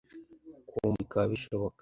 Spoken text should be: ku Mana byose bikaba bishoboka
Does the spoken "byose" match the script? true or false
false